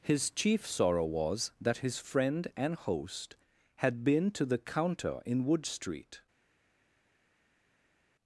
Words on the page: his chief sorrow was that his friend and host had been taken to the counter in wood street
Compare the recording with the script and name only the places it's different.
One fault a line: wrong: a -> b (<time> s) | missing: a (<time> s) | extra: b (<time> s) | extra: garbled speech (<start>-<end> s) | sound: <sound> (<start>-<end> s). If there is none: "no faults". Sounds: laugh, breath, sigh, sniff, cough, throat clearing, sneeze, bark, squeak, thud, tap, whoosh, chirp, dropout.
missing: taken (4.3 s)